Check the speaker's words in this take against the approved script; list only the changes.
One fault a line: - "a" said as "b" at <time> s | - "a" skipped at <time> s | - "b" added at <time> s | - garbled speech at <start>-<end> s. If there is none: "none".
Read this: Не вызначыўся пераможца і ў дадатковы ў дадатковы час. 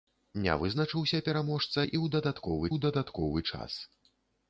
none